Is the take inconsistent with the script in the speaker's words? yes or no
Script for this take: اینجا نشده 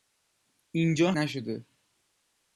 no